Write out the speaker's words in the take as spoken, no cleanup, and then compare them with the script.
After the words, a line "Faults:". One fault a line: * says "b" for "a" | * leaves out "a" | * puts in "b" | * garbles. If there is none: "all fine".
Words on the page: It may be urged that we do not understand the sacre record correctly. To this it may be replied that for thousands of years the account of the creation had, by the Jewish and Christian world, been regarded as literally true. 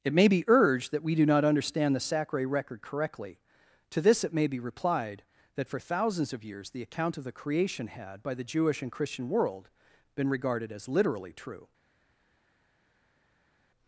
It may be urged that we do not understand the sacre record correctly. To this it may be replied that for thousands of years the account of the creation had, by the Jewish and Christian world, been regarded as literally true.
Faults:
all fine